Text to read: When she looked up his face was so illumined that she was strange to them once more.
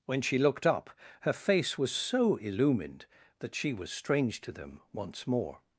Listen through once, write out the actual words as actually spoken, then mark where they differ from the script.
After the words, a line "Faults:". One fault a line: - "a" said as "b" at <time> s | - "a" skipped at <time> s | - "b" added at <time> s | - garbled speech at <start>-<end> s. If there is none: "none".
When she looked up her face was so illumined that she was strange to them once more.
Faults:
- "his" said as "her" at 1.2 s